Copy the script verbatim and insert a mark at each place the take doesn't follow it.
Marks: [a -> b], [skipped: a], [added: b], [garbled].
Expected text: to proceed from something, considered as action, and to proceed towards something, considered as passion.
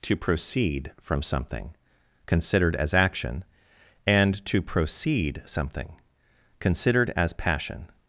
to proceed from something, considered as action, and to proceed [skipped: towards] something, considered as passion.